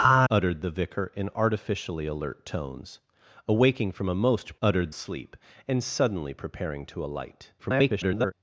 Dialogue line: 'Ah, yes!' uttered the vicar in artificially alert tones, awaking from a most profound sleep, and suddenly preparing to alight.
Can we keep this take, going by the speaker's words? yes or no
no